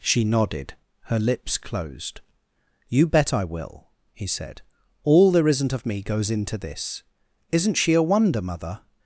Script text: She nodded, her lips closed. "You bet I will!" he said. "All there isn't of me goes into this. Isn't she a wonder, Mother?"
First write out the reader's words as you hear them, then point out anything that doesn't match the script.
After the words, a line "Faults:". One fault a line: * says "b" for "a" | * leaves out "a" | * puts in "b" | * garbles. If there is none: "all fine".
She nodded, her lips closed. "You bet I will!" he said. "All there isn't of me goes into this. Isn't she a wonder, Mother?"
Faults:
all fine